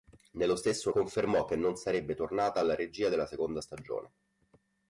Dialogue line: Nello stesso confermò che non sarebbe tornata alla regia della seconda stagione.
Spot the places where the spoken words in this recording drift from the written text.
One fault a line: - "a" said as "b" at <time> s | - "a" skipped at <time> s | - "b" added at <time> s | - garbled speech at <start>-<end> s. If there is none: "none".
none